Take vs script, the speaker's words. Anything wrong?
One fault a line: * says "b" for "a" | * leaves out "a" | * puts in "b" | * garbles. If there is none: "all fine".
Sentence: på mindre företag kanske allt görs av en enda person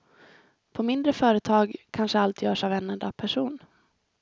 all fine